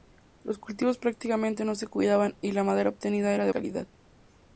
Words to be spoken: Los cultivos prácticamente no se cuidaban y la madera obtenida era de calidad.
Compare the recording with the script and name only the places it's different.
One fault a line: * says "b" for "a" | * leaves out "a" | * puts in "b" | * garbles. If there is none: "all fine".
all fine